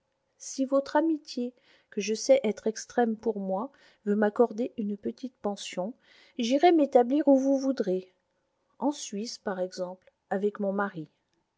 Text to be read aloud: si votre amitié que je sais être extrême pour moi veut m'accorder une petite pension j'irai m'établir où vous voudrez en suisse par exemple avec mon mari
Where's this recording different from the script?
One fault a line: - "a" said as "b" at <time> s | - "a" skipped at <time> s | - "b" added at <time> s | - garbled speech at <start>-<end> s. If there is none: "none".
none